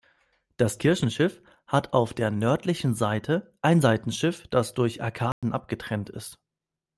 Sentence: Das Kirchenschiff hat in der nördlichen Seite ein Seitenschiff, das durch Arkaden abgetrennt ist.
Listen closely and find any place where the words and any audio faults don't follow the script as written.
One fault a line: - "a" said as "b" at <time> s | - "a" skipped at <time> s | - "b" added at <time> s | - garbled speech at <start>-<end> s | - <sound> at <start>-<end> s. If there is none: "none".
- "in" said as "auf" at 1.9 s
- dropout at 5.3-5.4 s